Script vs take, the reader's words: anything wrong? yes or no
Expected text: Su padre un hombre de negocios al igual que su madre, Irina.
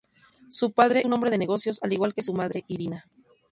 no